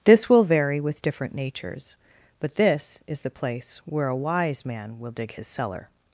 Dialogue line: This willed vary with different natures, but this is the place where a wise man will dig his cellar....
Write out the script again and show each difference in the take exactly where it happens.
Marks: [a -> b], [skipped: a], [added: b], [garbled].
This [willed -> will] vary with different natures, but this is the place where a wise man will dig his cellar....